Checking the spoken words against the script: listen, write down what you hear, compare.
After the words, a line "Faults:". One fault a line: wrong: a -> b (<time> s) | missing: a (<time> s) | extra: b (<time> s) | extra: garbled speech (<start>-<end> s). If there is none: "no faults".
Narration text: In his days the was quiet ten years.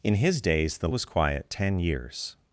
In his days the was quiet ten years.
Faults:
no faults